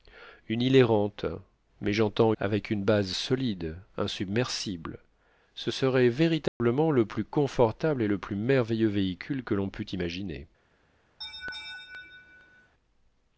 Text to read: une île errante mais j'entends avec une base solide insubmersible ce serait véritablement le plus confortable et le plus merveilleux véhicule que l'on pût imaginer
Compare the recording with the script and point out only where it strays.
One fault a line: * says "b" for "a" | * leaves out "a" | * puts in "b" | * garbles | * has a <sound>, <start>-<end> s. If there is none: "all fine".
* has a dropout, 6.5-6.6 s
* has a laugh, 11.2-12.7 s